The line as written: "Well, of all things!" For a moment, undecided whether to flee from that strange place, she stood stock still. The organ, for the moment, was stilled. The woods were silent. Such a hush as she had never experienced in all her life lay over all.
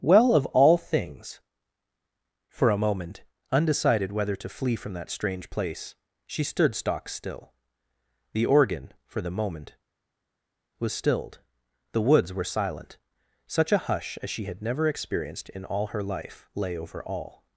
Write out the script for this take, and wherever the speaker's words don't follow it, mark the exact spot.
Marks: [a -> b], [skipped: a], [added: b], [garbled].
"Well, of all things!" For a moment, undecided whether to flee from that strange place, she stood stock still. The organ, for the moment, was stilled. The woods were silent. Such a hush as she had never experienced in all her life lay over all.